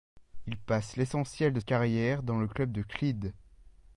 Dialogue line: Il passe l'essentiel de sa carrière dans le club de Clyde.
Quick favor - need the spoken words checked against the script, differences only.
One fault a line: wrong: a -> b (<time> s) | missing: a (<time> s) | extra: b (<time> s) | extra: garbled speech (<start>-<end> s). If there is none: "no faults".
missing: sa (1.6 s)